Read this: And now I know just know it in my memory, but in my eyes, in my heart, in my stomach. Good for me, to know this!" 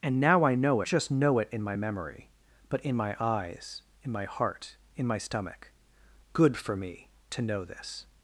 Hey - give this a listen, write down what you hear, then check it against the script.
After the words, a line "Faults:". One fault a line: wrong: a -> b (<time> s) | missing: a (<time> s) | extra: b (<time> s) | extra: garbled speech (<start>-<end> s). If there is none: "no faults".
And now I know just know it in my memory, but in my eyes, in my heart, in my stomach. Good for me, to know this!"
Faults:
no faults